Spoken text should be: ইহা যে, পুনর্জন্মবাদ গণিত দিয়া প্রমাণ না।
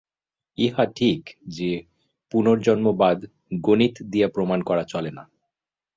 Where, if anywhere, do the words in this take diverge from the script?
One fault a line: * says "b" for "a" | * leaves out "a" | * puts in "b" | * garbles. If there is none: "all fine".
* puts in "ঠিক"
* puts in "করা চলে"